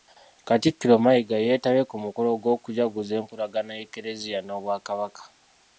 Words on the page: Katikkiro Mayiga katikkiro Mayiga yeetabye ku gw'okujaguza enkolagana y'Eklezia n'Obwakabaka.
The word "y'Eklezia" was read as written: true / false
true